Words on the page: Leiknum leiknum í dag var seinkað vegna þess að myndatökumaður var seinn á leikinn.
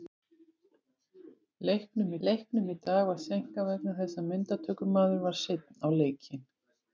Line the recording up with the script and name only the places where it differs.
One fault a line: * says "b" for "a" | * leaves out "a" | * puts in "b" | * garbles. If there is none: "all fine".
all fine